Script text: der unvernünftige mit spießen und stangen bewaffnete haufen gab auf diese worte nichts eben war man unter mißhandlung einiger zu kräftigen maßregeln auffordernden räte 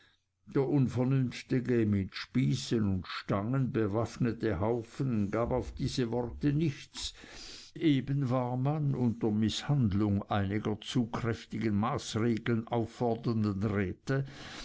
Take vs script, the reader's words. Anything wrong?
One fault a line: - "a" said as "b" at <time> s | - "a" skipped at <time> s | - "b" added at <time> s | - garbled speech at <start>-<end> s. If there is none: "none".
none